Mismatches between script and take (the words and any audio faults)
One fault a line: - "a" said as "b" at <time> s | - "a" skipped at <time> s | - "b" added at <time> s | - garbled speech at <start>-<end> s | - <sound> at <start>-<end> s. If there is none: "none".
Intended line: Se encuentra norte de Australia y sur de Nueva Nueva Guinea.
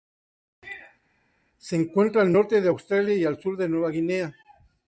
- "al" added at 2.2 s
- "al" added at 3.2 s
- "Nueva" skipped at 3.9 s